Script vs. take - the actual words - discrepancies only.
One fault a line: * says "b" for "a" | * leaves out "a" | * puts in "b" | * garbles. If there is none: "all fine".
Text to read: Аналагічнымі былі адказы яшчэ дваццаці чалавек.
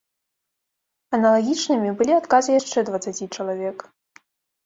all fine